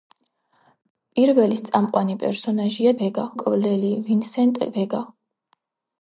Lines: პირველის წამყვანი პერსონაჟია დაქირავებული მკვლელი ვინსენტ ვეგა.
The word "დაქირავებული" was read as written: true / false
false